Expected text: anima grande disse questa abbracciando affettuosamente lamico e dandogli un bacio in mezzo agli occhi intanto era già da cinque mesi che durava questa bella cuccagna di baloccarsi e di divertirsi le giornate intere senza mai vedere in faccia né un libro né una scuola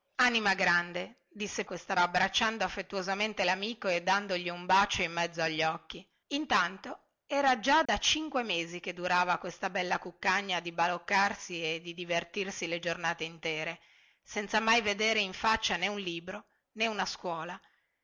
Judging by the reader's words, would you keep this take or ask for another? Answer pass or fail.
pass